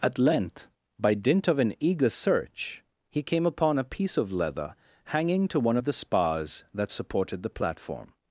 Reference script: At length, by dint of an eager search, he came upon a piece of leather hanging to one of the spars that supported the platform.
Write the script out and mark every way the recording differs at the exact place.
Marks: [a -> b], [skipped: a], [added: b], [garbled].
At length, by dint of an eager search, he came upon a piece of leather hanging to one of the spars that supported the platform.